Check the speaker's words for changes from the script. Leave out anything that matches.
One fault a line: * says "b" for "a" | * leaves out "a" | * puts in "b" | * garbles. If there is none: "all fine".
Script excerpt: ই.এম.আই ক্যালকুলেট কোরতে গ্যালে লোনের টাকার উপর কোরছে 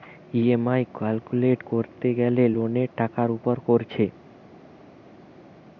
all fine